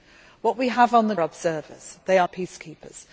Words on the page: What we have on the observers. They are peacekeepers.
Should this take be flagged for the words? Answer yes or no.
no